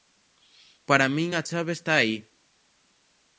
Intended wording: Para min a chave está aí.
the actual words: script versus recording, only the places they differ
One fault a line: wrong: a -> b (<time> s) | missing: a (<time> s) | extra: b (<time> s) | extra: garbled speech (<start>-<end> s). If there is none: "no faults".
no faults